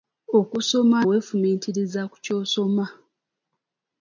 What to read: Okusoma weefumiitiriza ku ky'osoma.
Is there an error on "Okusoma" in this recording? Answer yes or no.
no